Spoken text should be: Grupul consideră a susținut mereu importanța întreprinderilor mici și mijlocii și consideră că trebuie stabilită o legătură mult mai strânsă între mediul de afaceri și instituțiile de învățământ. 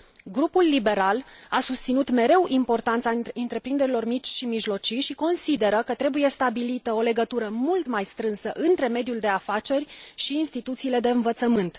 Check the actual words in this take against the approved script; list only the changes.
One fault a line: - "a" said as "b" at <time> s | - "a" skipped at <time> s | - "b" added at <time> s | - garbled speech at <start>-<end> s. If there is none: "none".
- "consideră" said as "liberal" at 0.6 s